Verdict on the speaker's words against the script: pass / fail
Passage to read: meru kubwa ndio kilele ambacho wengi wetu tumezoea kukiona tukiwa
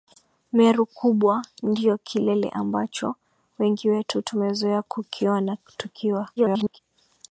fail